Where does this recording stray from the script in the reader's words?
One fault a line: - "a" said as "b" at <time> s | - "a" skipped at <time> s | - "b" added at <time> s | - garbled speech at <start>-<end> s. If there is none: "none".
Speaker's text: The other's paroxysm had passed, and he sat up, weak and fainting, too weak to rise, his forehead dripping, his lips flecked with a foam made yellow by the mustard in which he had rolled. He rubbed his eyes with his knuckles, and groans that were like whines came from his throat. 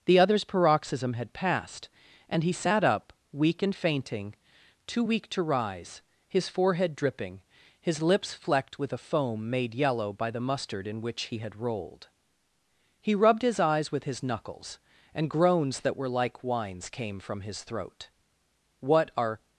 - "What are" added at 18.8 s